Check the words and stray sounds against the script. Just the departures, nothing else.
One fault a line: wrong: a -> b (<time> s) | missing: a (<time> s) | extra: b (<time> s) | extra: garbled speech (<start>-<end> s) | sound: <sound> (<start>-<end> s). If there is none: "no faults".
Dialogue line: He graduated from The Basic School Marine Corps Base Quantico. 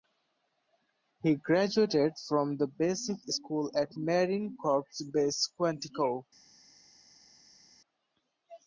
extra: at (3.7 s)